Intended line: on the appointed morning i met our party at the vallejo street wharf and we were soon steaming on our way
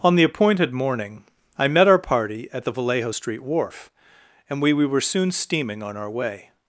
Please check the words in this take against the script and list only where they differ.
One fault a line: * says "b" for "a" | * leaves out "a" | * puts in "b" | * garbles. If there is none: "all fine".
* puts in "we"